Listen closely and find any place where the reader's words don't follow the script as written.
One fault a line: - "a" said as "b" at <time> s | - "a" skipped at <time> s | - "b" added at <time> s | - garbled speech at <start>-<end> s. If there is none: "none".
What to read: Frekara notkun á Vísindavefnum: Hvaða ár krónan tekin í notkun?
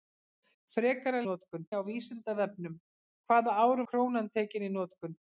none